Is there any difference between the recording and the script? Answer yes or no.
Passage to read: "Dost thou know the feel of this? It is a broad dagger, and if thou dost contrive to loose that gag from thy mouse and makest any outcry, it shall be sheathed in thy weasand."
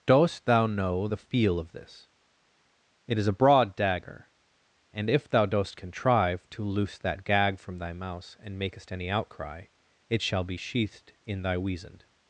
no